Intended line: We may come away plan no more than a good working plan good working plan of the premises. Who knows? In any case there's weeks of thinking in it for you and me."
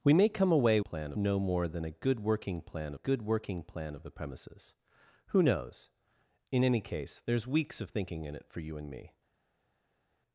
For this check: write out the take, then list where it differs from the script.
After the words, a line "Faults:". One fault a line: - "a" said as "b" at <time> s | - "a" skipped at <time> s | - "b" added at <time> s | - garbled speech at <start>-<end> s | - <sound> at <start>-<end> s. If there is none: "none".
We may come away plan no more than a good working plan good working plan of the premises. Who knows? In any case there's weeks of thinking in it for you and me."
Faults:
none